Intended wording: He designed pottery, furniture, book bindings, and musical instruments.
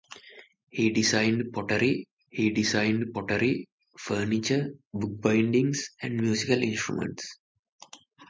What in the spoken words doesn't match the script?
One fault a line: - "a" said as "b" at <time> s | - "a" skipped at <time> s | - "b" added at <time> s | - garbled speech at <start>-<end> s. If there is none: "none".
- "he designed pottery" added at 2.3 s